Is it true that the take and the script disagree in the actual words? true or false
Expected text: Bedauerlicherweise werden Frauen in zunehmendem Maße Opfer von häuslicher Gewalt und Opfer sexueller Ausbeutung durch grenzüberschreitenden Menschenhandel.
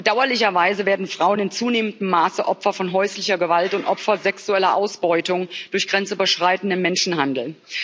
false